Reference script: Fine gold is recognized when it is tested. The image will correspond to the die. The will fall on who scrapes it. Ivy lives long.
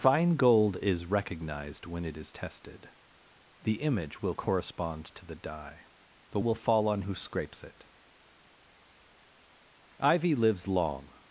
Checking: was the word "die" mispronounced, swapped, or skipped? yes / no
no